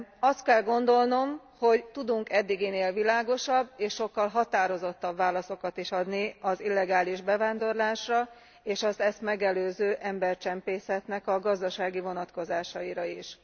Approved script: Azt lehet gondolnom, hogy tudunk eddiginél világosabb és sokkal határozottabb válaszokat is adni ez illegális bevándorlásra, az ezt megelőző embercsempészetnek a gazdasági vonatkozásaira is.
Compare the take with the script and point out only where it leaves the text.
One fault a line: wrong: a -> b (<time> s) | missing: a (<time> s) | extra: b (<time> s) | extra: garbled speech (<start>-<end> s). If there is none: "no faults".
wrong: lehet -> kell (0.4 s)
wrong: ez -> az (6.4 s)
extra: és (8.6 s)